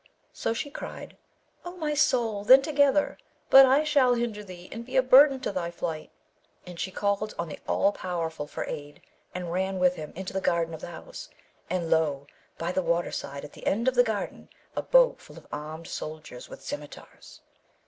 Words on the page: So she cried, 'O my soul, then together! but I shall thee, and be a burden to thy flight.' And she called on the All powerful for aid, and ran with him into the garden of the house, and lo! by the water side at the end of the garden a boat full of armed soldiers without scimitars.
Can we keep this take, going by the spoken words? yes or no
no